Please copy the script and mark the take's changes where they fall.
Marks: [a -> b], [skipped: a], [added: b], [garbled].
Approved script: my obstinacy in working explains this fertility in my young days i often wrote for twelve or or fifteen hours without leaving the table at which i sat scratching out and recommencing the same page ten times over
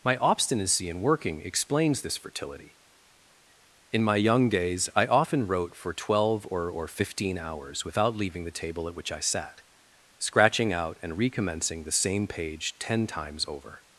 my obstinacy in working explains this fertility in my young days i often wrote for twelve or or fifteen hours without leaving the table at which i sat scratching out and recommencing the same page ten times over